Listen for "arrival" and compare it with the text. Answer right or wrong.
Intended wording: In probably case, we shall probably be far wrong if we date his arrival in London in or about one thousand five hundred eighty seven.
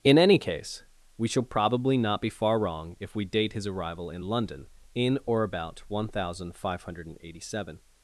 right